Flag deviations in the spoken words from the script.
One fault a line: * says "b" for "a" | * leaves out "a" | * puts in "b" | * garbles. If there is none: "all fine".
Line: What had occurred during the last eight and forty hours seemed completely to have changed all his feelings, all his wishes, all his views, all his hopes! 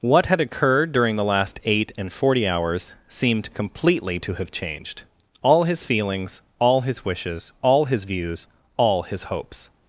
all fine